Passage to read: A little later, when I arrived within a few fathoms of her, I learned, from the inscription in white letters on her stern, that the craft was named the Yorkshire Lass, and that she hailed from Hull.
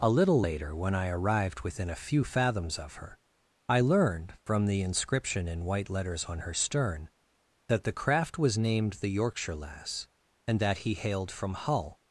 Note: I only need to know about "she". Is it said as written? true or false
false